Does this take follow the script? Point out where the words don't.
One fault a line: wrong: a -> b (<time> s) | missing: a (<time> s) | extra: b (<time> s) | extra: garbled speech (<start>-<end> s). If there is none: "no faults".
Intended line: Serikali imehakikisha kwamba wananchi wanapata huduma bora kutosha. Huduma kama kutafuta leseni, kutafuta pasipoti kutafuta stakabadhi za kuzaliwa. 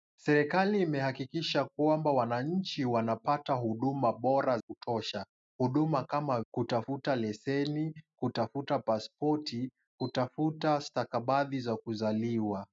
no faults